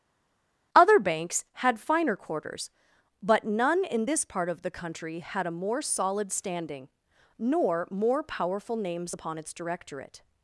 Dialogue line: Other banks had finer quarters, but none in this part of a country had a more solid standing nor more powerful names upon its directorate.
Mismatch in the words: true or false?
true